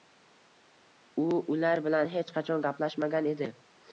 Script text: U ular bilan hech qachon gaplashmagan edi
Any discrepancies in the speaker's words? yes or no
no